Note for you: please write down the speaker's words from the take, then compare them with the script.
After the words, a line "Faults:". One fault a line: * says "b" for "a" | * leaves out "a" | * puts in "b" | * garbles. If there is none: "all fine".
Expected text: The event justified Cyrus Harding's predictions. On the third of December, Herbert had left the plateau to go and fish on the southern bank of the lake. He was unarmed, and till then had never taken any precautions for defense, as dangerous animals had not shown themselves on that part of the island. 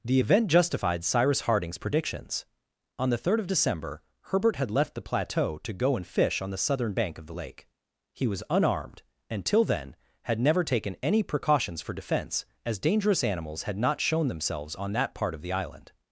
The event justified Cyrus Harding's predictions. On the third of December, Herbert had left the plateau to go and fish on the southern bank of the lake. He was unarmed, and till then had never taken any precautions for defense, as dangerous animals had not shown themselves on that part of the island.
Faults:
all fine